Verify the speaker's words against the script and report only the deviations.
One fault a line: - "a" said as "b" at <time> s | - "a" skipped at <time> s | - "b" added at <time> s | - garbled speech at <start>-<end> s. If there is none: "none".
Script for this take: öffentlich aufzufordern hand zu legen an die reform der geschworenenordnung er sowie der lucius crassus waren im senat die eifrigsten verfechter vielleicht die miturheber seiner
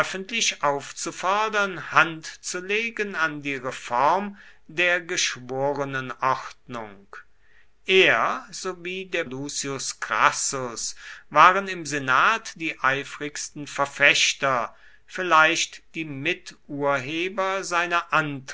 none